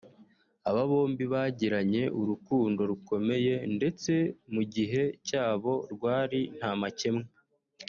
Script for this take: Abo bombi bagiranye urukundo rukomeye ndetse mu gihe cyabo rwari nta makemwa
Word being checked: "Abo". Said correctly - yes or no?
no